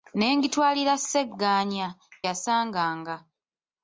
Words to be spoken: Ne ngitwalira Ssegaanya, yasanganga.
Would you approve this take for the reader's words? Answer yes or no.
yes